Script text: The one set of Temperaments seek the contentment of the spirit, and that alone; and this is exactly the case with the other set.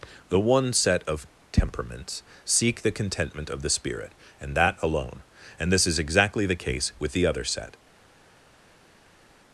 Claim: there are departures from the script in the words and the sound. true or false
false